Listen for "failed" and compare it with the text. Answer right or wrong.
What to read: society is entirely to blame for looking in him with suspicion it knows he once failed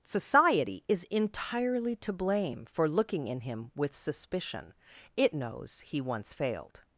right